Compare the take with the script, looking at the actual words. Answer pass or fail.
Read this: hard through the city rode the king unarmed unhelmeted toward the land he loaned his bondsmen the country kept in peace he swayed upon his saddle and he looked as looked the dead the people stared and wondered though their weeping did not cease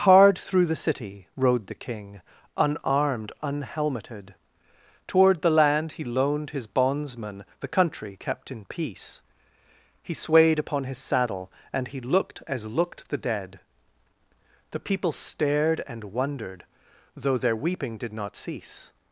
pass